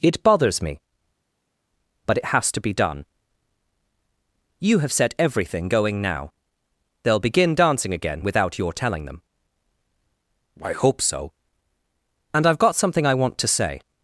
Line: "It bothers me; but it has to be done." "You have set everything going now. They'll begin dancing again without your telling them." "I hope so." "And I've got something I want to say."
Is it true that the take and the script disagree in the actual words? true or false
false